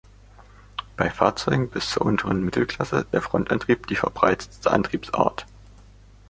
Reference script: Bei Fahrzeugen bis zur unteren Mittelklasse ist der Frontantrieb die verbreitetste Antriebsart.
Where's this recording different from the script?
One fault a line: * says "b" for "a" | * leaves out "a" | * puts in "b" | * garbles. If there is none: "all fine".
* leaves out "ist"